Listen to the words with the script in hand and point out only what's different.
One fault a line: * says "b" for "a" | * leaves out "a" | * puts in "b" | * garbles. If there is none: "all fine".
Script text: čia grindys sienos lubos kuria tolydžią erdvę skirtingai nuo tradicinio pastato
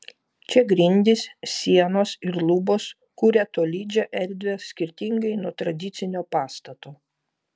* puts in "ir"